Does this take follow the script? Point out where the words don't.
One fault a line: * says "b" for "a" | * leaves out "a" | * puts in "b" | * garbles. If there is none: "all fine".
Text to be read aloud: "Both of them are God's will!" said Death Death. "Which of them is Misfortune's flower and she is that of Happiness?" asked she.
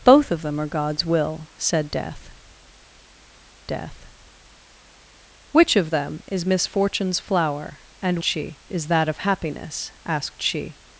all fine